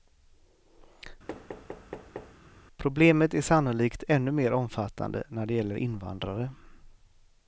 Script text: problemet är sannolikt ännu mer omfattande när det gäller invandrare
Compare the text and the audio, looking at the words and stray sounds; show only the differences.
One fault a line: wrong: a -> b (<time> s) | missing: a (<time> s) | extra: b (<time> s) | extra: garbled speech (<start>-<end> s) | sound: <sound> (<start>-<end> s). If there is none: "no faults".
sound: thud (1.3-2.4 s)